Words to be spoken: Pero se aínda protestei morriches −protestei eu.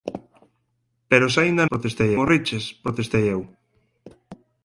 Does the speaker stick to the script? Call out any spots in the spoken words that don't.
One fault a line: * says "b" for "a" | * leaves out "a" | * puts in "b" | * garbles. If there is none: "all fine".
all fine